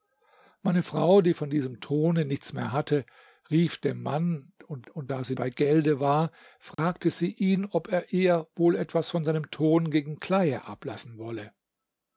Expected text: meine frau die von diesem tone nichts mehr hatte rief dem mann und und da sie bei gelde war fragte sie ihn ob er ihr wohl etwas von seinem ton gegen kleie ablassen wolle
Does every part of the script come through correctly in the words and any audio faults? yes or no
no